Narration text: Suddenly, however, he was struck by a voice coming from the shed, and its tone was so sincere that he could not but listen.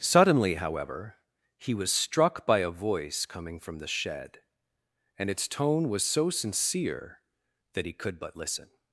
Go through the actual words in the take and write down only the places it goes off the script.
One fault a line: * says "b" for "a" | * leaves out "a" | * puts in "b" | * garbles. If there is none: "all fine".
* leaves out "not"